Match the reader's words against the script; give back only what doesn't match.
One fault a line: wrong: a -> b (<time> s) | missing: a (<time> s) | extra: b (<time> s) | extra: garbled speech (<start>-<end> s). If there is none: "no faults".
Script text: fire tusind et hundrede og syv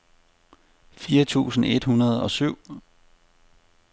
no faults